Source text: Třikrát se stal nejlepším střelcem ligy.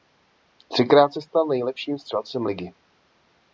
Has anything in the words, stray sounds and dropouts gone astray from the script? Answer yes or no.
no